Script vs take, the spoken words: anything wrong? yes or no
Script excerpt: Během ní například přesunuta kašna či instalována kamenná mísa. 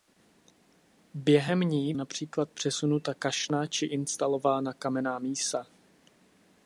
no